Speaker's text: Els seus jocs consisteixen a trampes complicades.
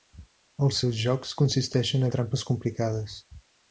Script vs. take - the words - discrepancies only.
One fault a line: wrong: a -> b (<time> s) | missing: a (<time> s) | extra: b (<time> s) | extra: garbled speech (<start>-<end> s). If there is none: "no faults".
no faults